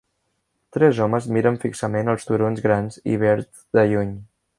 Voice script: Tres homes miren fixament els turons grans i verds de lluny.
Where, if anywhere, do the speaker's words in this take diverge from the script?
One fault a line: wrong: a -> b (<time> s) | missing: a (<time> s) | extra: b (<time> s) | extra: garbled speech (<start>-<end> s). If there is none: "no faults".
no faults